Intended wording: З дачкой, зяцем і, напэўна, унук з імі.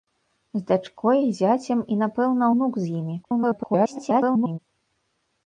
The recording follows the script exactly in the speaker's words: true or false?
false